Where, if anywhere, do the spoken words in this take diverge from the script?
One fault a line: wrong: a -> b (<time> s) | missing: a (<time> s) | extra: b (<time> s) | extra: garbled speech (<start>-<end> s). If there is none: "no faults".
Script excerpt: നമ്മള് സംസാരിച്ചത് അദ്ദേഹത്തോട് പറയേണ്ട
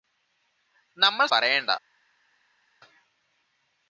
missing: സംസാരിച്ചത് അദ്ദേഹത്തോട് (1.3 s)